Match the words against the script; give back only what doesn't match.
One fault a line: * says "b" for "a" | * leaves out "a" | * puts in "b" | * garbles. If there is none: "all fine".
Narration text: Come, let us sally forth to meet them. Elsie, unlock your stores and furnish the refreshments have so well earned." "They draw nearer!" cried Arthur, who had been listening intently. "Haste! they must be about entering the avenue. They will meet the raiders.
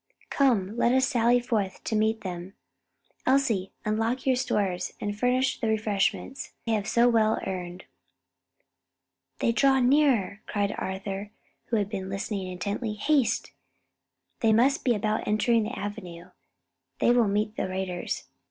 all fine